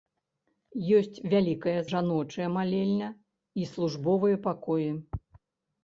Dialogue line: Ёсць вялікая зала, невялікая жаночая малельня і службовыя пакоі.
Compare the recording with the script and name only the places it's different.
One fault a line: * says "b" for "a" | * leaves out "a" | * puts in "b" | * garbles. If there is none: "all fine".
* leaves out "зала невялікая"